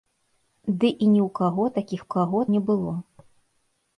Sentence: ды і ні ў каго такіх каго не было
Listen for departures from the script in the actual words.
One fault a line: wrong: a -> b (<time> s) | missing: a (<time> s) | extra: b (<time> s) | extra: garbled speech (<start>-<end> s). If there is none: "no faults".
no faults